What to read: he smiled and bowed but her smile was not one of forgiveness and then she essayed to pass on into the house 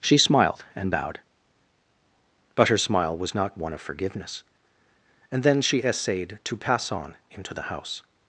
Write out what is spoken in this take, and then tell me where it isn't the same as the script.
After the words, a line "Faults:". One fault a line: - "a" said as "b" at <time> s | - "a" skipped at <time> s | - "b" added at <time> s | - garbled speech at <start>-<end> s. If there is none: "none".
she smiled and bowed but her smile was not one of forgiveness and then she essayed to pass on into the house
Faults:
- "he" said as "she" at 0.0 s